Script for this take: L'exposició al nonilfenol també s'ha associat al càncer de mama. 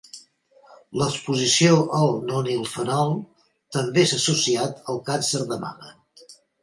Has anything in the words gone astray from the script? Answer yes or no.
no